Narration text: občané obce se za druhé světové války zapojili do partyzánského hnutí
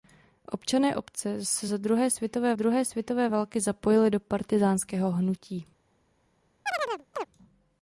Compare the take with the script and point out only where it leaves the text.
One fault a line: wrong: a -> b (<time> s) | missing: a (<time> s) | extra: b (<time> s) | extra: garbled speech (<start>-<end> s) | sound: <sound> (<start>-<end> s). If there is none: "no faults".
extra: druhé světové (2.5 s)
sound: chirp (6.7-7.3 s)